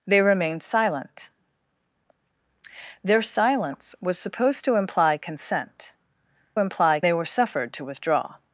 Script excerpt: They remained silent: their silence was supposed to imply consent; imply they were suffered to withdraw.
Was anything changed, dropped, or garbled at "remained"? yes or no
no